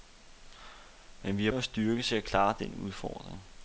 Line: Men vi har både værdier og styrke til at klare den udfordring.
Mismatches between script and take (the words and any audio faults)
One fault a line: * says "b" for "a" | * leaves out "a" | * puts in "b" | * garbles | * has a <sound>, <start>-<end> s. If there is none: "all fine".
* leaves out "både værdier"